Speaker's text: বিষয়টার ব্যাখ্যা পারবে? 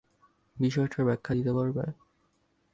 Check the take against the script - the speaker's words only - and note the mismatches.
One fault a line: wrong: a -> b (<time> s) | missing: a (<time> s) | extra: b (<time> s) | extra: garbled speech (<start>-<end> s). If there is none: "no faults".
extra: দিতে (1.3 s)